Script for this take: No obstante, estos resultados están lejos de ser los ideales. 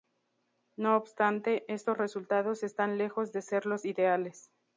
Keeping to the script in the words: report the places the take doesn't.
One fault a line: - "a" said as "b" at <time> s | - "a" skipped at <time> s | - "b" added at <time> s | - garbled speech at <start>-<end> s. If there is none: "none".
none